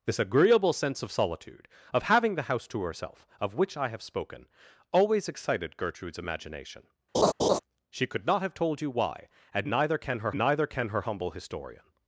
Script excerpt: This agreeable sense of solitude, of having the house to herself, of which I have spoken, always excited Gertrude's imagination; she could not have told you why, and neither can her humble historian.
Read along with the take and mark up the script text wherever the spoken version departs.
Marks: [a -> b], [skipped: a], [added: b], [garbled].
This agreeable sense of solitude, of having the house to herself, of which I have spoken, always excited Gertrude's imagination; she could not have told you why, and neither can her [added: neither can her] humble historian.